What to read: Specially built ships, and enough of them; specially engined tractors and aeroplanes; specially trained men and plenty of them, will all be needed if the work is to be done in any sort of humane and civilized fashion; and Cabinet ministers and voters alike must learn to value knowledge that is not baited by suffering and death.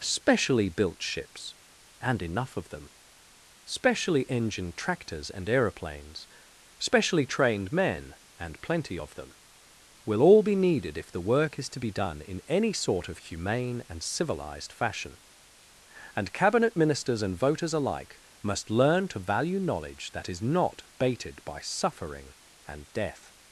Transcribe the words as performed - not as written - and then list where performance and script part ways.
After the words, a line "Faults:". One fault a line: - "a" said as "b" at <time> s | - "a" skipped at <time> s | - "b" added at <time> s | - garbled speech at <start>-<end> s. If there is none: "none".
Specially built ships, and enough of them; specially engined tractors and aeroplanes; specially trained men and plenty of them, will all be needed if the work is to be done in any sort of humane and civilized fashion; and Cabinet ministers and voters alike must learn to value knowledge that is not baited by suffering and death.
Faults:
none